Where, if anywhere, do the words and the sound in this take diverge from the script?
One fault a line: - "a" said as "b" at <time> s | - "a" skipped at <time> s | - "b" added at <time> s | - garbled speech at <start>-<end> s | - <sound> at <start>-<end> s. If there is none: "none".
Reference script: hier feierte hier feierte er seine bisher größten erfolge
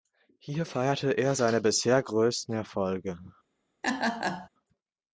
- "hier feierte" skipped at 1.1 s
- laugh at 3.8-4.5 s